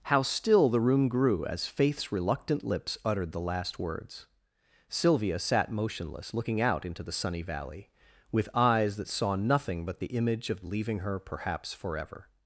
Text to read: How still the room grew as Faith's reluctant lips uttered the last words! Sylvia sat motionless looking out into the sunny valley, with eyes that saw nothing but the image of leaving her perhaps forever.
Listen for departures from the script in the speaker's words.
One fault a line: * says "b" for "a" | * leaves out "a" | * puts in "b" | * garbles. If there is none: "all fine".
all fine